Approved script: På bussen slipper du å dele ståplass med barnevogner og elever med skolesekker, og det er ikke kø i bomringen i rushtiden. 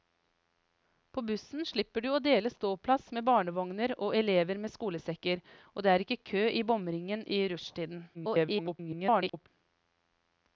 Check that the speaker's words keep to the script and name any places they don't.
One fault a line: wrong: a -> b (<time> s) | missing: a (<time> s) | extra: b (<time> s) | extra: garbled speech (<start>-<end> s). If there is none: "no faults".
extra: garbled speech (8.1-9.5 s)